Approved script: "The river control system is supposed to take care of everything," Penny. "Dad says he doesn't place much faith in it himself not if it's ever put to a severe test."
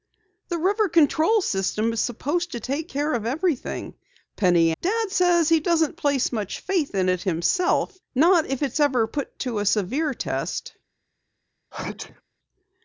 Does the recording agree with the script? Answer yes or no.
yes